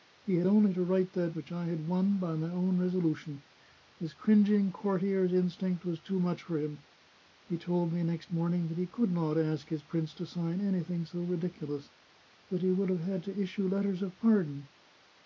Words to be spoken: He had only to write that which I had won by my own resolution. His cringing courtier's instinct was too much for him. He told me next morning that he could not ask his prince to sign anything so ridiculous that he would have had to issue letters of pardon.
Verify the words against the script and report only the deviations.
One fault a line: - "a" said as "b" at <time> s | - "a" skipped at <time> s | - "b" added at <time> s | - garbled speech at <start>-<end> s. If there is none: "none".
none